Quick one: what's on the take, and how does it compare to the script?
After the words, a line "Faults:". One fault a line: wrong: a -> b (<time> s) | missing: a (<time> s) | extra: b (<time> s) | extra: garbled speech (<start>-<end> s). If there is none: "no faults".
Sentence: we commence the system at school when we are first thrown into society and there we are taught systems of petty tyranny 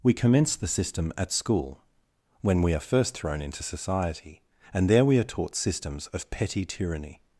we commence the system at school when we are first thrown into society and there we are taught systems of petty tyranny
Faults:
no faults